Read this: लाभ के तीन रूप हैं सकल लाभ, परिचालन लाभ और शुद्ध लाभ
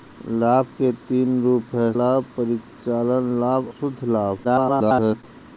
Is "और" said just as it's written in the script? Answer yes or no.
no